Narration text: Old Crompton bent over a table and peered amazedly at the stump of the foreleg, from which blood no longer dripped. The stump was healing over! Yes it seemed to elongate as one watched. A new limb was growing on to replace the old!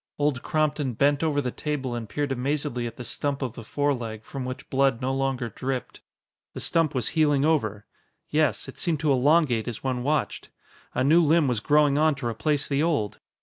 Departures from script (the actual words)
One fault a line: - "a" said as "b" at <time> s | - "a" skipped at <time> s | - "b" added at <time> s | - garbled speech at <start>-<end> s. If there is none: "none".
- "a" said as "the" at 1.4 s